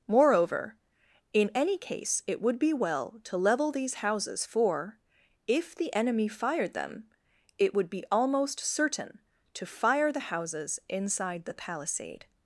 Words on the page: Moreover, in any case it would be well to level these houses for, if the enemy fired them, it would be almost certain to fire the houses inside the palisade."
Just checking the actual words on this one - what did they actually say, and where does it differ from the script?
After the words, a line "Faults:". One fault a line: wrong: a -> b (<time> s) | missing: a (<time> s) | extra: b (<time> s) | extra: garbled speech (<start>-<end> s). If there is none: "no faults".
Moreover, in any case it would be well to level these houses for, if the enemy fired them, it would be almost certain to fire the houses inside the palisade."
Faults:
no faults